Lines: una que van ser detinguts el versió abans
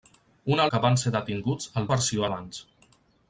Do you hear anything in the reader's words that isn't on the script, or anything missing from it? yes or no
no